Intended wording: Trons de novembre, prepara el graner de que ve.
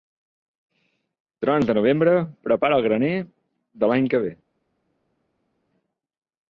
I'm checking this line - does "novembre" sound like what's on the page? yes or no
yes